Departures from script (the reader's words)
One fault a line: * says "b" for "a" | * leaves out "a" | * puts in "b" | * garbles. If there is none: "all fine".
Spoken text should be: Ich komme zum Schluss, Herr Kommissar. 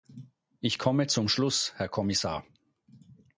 all fine